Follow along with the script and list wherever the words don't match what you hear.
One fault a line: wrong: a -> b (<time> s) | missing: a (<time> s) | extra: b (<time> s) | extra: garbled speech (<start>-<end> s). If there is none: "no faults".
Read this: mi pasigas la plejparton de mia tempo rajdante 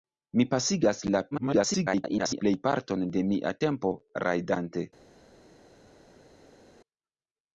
extra: garbled speech (1.3-2.4 s)